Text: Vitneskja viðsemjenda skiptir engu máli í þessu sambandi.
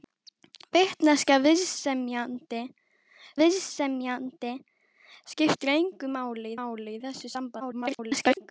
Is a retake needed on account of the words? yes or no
yes